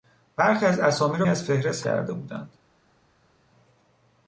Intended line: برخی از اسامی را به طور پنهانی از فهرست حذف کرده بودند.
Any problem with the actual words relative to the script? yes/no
yes